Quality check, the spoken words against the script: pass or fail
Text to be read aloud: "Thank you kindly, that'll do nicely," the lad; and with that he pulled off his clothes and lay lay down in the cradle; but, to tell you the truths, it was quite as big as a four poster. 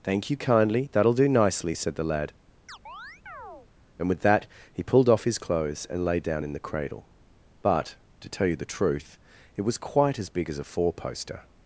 fail